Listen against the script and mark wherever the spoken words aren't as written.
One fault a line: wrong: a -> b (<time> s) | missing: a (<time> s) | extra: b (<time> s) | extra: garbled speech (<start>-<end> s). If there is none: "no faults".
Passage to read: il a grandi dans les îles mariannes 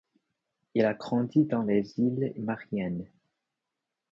no faults